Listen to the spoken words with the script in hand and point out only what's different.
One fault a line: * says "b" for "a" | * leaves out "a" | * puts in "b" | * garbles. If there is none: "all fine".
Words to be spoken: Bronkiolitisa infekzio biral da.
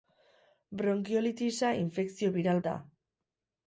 all fine